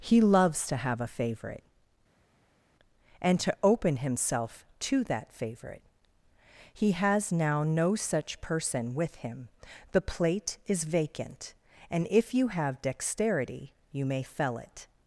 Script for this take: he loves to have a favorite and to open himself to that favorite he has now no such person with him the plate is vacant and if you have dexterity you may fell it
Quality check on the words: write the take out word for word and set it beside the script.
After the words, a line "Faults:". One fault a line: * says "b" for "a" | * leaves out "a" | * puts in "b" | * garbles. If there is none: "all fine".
he loves to have a favorite and to open himself to that favorite he has now no such person with him the plate is vacant and if you have dexterity you may fell it
Faults:
all fine